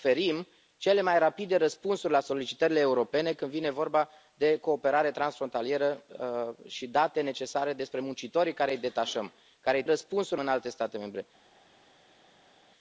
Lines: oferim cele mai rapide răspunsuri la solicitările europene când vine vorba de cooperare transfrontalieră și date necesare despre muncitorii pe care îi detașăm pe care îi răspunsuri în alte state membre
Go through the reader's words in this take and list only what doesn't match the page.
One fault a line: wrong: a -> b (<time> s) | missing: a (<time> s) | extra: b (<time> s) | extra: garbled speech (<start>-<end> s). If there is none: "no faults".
no faults